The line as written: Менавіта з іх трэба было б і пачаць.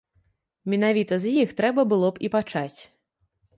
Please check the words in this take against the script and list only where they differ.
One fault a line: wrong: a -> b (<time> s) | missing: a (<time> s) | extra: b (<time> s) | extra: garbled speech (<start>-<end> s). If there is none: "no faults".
no faults